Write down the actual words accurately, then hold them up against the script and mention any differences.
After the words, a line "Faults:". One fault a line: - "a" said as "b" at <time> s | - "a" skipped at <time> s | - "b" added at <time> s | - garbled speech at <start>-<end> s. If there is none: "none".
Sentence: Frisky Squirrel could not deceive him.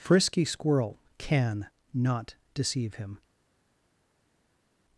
Frisky Squirrel can not deceive him.
Faults:
- "could" said as "can" at 1.2 s